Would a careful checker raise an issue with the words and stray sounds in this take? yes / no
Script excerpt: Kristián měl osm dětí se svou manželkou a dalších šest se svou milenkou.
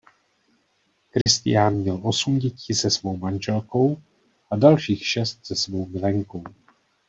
yes